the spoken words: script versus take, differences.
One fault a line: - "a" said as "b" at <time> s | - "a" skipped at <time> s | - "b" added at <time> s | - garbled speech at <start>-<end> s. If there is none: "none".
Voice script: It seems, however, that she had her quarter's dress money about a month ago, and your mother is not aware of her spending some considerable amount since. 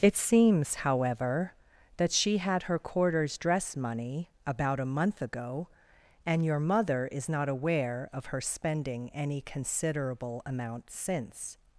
- "some" said as "any" at 9.1 s